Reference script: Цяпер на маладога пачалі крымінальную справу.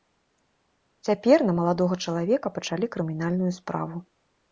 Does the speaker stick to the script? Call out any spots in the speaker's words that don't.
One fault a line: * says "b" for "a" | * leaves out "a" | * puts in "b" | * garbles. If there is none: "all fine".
* puts in "чалавека"